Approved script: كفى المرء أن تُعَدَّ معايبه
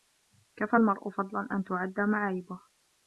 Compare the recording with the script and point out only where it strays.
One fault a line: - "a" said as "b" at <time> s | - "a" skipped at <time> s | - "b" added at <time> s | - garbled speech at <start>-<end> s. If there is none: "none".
- "فضلا" added at 1.1 s